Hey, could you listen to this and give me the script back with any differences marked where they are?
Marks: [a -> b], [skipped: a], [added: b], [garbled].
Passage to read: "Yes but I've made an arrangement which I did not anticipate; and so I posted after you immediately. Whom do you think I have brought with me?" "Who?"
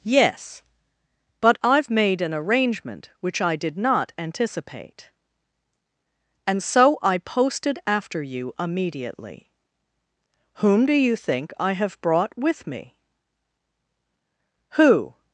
"Yes but I've made an arrangement which I did not anticipate; and so I posted after you immediately. Whom do you think I have brought with me?" "Who?"